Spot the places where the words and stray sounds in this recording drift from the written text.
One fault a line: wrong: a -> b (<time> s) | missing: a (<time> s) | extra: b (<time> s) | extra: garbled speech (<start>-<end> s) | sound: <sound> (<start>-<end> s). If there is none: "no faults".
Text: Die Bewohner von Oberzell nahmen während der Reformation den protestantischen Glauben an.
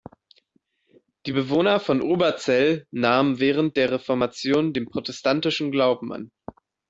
no faults